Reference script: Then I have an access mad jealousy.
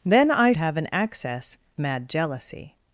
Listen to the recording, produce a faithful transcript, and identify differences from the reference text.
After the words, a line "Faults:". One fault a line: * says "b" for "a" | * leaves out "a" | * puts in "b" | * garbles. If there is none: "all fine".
Then I have an access mad jealousy.
Faults:
all fine